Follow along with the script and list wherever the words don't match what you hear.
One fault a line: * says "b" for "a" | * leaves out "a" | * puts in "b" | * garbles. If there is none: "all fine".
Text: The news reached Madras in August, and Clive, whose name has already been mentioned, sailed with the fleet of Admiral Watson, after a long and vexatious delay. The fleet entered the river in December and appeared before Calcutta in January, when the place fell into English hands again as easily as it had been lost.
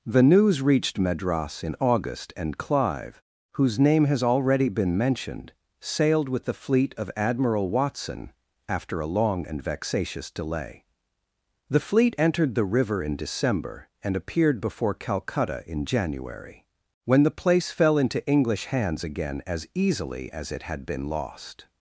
all fine